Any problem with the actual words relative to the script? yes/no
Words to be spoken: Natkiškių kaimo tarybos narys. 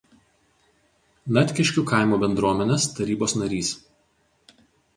yes